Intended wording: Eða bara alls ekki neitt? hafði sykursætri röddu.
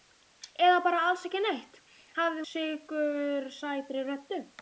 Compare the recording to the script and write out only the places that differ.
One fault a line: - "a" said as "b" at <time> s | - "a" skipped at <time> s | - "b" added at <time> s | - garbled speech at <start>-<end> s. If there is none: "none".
none